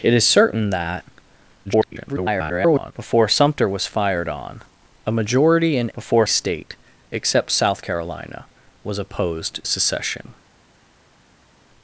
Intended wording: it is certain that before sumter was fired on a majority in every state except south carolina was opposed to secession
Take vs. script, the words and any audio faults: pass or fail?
fail